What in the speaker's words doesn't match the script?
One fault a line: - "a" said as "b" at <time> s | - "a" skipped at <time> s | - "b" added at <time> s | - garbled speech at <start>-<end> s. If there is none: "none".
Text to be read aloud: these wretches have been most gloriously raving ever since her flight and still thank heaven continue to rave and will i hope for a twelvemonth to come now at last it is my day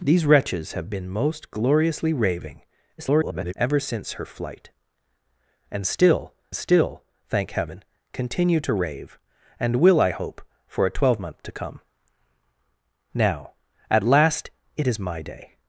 - garbled speech at 3.0-3.5 s
- "still" added at 6.5 s